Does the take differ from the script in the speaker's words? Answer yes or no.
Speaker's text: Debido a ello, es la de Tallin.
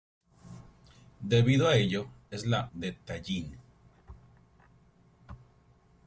no